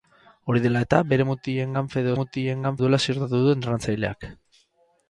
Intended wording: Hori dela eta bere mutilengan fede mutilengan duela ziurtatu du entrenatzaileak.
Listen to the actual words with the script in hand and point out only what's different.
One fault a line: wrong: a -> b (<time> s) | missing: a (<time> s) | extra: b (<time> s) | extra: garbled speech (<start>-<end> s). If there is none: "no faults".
no faults